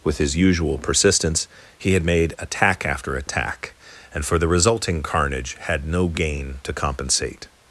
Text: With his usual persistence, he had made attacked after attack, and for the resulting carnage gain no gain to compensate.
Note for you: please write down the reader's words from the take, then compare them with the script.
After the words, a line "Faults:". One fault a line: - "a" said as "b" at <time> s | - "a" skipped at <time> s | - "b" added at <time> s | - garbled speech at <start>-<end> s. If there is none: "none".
With his usual persistence, he had made attack after attack, and for the resulting carnage had no gain to compensate.
Faults:
- "attacked" said as "attack" at 2.4 s
- "gain" said as "had" at 5.6 s